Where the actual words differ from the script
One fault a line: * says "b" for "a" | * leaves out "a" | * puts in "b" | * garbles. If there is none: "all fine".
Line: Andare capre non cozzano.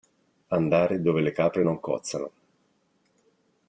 * puts in "dove le"